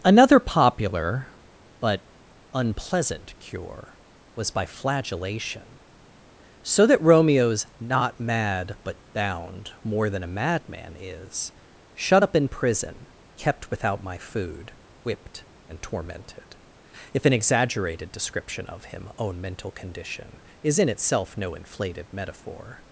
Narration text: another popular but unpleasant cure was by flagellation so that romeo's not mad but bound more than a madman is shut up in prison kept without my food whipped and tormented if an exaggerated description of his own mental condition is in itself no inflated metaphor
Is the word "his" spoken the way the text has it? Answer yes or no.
no